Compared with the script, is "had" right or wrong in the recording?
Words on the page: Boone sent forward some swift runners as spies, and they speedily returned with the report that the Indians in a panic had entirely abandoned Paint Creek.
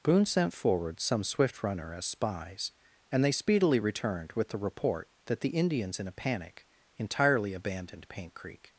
wrong